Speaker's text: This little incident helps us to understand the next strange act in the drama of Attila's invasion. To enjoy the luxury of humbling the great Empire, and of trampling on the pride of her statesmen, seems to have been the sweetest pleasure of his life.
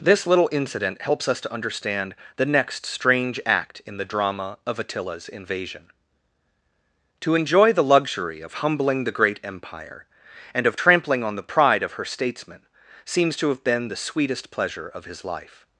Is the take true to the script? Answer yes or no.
yes